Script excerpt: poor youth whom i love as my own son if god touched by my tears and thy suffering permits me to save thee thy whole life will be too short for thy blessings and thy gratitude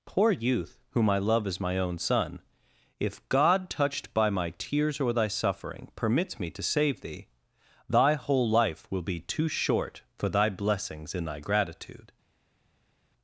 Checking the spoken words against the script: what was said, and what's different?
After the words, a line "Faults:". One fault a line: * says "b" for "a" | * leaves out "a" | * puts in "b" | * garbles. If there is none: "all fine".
poor youth whom i love as my own son if god touched by my tears or thy suffering permits me to save thee thy whole life will be too short for thy blessings in thy gratitude
Faults:
* says "or" for "and"
* says "in" for "and"